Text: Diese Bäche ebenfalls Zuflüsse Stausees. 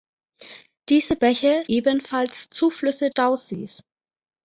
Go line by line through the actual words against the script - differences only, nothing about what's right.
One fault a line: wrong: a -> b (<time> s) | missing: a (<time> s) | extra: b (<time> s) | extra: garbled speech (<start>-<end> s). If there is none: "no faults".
no faults